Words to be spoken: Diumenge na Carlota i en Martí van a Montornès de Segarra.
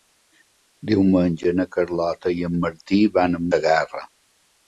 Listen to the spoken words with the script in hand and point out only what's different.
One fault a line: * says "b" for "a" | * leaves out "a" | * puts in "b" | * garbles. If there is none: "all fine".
* leaves out "Montornès de"